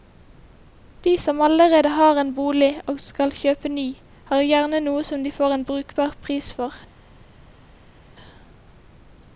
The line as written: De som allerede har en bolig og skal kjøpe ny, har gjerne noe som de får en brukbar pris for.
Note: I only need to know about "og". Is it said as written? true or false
true